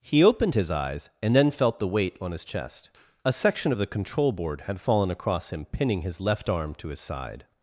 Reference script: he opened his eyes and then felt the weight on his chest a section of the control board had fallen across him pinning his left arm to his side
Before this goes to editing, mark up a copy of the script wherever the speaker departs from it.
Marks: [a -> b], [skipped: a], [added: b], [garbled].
he opened his eyes and then felt the weight on his chest a section of the control board had fallen across him pinning his left arm to his side